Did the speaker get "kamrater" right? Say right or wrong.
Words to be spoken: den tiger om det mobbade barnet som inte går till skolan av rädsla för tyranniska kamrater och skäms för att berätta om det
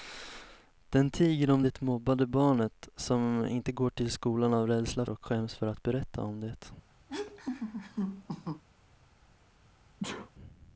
wrong